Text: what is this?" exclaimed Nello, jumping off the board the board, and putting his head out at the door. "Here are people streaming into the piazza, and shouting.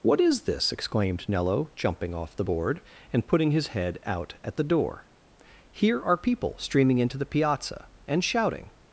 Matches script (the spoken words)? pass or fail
fail